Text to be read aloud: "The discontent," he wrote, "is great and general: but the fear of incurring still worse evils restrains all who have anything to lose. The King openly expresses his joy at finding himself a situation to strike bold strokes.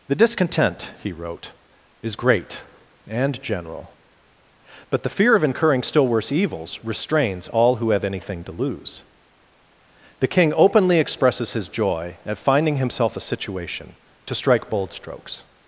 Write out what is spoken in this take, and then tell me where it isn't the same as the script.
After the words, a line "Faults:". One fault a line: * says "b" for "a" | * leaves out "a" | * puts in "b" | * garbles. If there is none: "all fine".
"The discontent," he wrote, "is great and general: but the fear of incurring still worse evils restrains all who have anything to lose. The King openly expresses his joy at finding himself a situation to strike bold strokes.
Faults:
all fine